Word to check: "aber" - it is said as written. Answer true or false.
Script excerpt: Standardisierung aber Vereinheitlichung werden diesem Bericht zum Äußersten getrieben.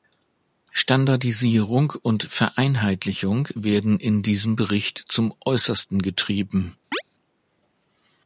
false